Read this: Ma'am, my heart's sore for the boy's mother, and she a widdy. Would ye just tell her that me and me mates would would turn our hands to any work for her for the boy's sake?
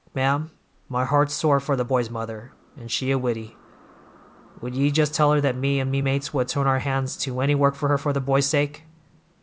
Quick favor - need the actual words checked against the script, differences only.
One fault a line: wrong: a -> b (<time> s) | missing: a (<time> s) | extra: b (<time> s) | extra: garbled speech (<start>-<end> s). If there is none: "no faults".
missing: would (6.5 s)